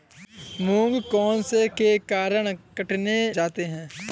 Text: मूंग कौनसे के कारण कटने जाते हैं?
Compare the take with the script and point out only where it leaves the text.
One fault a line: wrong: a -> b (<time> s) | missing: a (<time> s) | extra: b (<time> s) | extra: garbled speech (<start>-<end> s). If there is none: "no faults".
no faults